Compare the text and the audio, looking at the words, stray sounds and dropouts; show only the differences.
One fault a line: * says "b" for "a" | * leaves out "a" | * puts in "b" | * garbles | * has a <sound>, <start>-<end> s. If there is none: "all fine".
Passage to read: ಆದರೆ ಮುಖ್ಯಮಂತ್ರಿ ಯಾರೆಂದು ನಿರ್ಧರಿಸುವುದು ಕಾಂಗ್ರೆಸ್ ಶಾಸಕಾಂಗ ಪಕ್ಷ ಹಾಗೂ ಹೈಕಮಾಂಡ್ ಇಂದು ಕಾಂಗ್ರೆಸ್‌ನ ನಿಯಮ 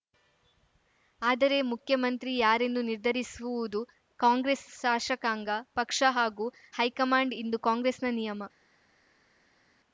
all fine